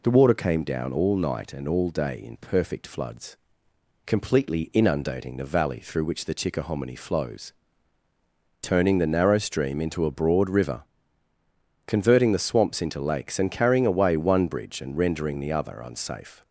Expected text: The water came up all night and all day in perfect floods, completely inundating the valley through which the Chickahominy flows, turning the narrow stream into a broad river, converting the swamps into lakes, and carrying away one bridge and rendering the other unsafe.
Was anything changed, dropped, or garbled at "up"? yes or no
yes